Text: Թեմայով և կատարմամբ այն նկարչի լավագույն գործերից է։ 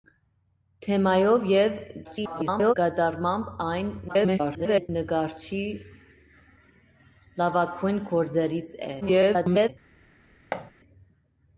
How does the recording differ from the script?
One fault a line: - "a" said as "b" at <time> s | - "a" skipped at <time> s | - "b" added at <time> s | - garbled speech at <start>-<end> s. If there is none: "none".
- garbled speech at 2.0-2.7 s
- garbled speech at 4.1-4.9 s
- garbled speech at 9.0-9.7 s